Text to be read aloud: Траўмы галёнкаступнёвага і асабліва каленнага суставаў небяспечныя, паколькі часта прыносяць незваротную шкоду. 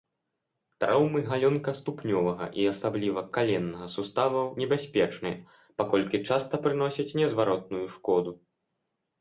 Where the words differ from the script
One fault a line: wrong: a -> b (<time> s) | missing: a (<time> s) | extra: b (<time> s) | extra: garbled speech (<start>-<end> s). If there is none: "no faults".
no faults